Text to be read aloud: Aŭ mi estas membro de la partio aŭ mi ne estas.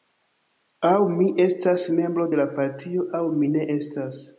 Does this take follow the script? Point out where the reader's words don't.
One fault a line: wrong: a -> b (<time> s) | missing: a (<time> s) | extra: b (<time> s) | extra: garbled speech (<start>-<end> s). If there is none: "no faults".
no faults